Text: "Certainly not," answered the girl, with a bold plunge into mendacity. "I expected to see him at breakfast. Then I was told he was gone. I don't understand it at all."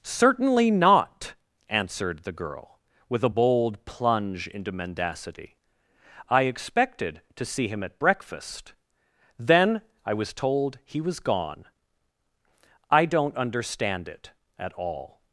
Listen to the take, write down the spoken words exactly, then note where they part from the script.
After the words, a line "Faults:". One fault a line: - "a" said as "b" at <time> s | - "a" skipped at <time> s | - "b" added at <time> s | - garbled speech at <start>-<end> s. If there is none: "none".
"Certainly not," answered the girl, with a bold plunge into mendacity. "I expected to see him at breakfast. Then I was told he was gone. I don't understand it at all."
Faults:
none